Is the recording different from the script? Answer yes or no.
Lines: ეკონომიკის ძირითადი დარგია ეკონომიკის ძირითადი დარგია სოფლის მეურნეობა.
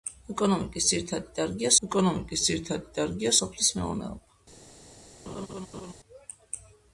no